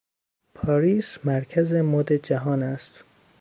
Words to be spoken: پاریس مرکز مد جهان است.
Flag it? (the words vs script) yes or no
no